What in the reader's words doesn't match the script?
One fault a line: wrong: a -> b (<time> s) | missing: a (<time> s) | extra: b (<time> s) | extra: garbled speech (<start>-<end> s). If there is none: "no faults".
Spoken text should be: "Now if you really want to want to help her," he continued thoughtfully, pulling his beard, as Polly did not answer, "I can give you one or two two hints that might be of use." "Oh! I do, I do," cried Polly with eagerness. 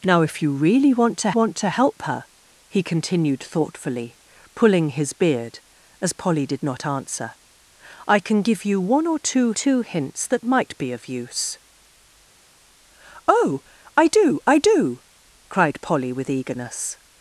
no faults